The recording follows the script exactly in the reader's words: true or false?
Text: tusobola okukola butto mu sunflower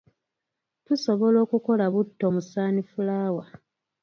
true